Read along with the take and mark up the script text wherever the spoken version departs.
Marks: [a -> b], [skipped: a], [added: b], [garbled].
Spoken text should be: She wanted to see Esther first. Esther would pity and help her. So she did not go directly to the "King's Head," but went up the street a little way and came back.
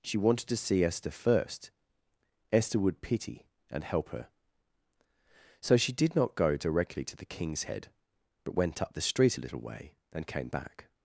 She wanted to see Esther first. Esther would pity and help her. So she did not go directly to the "King's Head," but went up the street a little way and came back.